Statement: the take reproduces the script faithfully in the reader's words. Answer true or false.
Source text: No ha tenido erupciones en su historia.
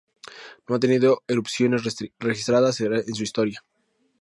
false